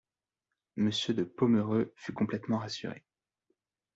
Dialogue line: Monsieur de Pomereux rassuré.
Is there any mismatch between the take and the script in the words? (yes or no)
yes